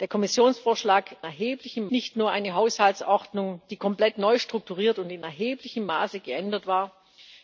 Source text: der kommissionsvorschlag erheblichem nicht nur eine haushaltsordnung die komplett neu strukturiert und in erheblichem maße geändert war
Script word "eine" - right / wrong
right